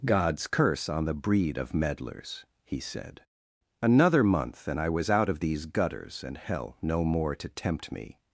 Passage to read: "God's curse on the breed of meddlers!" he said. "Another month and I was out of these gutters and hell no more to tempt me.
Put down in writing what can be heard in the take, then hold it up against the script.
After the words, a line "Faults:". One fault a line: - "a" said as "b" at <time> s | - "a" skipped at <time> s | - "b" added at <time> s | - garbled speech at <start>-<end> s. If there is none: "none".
"God's curse on the breed of meddlers!" he said. "Another month and I was out of these gutters and hell no more to tempt me.
Faults:
none